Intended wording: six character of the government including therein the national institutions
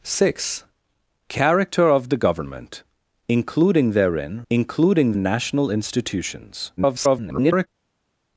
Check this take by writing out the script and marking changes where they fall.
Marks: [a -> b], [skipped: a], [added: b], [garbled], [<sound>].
six character of the government including therein [the -> including] national institutions [garbled]